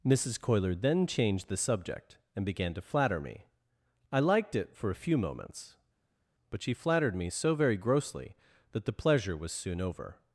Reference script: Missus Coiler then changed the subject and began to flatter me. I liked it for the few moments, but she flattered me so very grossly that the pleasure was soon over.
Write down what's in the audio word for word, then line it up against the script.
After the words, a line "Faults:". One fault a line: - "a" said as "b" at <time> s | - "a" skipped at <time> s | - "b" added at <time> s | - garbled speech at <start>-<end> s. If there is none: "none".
Missus Coiler then changed the subject and began to flatter me. I liked it for a few moments, but she flattered me so very grossly that the pleasure was soon over.
Faults:
- "the" said as "a" at 4.9 s